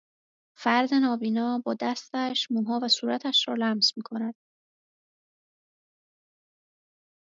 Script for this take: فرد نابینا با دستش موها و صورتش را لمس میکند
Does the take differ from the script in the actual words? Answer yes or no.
no